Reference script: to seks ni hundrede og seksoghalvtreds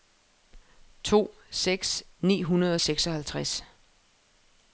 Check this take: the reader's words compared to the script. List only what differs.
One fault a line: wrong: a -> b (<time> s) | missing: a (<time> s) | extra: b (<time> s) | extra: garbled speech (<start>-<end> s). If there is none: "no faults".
no faults